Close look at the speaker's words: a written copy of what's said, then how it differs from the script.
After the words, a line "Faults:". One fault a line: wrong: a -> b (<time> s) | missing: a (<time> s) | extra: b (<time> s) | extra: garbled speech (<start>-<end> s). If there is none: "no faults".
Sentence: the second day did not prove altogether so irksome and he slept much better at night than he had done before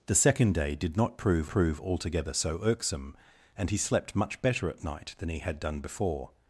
the second day did not prove prove altogether so irksome and he slept much better at night than he had done before
Faults:
extra: prove (1.5 s)